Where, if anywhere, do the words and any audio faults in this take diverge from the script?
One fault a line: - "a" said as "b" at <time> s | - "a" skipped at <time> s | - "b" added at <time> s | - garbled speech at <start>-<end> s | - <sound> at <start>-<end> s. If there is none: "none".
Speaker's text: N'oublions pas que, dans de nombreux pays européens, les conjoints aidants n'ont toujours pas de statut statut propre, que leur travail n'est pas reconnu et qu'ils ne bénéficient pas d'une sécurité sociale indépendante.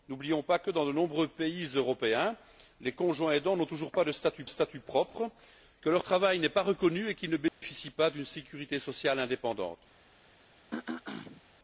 - dropout at 7.5-7.6 s
- throat clearing at 10.7-11.4 s